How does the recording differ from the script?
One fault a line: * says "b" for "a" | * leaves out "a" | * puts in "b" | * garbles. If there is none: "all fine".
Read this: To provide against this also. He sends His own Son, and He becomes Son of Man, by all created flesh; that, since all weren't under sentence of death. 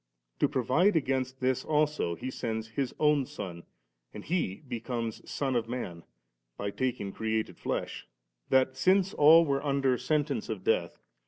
* says "taking" for "all"
* says "were" for "weren't"